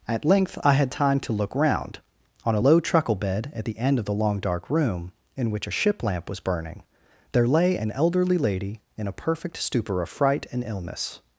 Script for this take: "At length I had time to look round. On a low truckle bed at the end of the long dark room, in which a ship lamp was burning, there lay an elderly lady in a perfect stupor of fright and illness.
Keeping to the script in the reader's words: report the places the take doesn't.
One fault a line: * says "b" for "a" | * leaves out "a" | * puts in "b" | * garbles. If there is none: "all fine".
all fine